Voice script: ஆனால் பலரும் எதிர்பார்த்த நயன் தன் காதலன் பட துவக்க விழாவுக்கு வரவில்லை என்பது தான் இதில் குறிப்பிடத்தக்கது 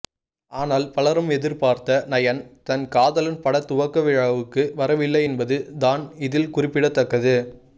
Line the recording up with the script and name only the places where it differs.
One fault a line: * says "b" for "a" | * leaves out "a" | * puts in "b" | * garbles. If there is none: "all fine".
all fine